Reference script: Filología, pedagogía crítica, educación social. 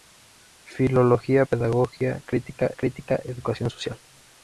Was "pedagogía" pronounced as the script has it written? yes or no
yes